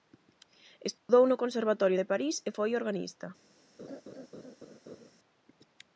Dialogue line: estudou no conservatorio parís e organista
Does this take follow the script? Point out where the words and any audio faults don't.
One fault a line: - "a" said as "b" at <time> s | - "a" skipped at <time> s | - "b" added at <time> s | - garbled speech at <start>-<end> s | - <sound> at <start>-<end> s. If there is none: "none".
- dropout at 1.0-1.1 s
- "de" added at 2.0 s
- "foi" added at 2.6 s
- laugh at 3.8-5.1 s